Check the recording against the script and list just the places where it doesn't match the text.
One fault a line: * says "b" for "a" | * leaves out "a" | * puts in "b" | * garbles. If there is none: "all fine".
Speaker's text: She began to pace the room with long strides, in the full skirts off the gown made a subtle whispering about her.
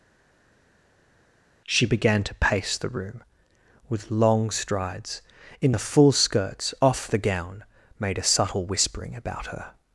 all fine